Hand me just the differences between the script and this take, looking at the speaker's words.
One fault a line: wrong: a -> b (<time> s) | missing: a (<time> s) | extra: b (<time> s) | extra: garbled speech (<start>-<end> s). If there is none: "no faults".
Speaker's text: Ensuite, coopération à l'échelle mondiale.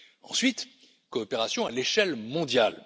no faults